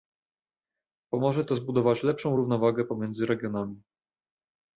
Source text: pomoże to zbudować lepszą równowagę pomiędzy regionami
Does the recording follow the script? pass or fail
pass